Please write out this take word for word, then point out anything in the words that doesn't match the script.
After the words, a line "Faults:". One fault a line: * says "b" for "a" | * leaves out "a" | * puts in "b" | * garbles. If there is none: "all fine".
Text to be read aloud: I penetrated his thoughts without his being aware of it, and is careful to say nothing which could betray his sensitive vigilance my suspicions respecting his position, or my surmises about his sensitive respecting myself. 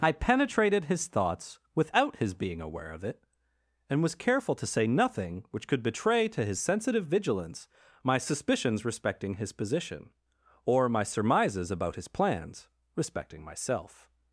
I penetrated his thoughts without his being aware of it, and was careful to say nothing which could betray to his sensitive vigilance my suspicions respecting his position, or my surmises about his plans respecting myself.
Faults:
* says "was" for "is"
* puts in "to"
* says "plans" for "sensitive"